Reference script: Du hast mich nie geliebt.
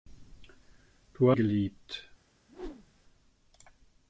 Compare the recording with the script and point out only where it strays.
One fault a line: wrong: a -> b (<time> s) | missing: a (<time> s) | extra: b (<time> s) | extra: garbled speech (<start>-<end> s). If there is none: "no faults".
missing: hast mich nie (1.3 s)